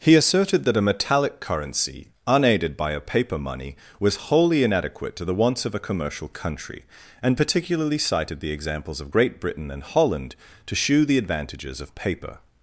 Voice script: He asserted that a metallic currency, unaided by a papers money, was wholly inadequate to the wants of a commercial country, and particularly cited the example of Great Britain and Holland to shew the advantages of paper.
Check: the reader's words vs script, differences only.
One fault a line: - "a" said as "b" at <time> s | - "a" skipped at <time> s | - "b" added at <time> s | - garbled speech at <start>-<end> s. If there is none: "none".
- "papers" said as "paper" at 3.0 s
- "example" said as "examples" at 8.5 s